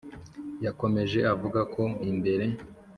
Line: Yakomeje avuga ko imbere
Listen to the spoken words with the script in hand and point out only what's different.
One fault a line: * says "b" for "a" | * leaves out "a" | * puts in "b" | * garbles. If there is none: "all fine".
all fine